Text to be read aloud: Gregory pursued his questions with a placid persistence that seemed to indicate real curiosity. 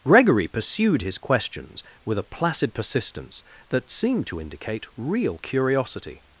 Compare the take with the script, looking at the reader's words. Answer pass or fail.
pass